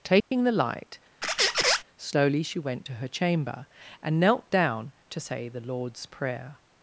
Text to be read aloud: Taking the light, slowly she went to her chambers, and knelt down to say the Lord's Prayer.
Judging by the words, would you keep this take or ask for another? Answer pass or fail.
fail